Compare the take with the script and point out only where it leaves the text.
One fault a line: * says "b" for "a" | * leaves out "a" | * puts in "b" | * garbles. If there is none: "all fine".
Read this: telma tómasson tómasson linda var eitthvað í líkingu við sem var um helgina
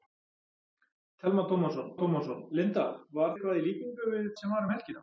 all fine